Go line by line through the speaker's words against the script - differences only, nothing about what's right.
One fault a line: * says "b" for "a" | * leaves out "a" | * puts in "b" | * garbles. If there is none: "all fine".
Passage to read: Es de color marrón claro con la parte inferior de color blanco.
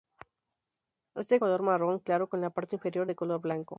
all fine